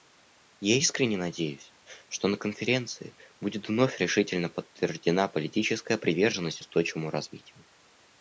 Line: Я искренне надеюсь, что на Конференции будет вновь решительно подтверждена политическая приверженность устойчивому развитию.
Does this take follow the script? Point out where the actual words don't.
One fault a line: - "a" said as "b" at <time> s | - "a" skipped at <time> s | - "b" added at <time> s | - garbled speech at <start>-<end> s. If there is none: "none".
none